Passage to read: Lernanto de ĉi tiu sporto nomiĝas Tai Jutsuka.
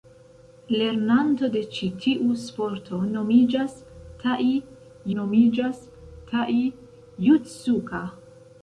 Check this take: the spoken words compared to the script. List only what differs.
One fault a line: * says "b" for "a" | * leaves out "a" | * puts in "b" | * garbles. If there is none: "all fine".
* puts in "nomiĝas Tai"